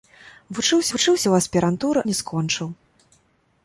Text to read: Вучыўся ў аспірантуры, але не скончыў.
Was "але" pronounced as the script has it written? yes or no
no